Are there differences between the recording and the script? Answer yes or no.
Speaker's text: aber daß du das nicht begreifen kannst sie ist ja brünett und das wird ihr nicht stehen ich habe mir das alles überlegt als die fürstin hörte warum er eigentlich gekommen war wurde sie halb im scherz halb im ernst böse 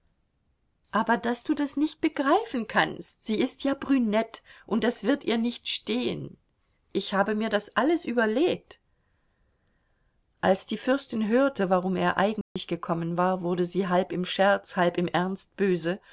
no